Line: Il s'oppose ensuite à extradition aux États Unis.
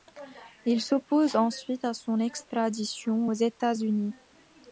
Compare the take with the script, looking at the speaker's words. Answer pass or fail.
fail